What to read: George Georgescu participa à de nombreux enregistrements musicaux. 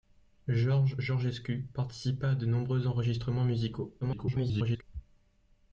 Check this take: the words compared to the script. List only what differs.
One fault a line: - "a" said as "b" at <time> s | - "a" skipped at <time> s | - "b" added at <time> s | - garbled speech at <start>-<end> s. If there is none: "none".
- garbled speech at 4.0-4.8 s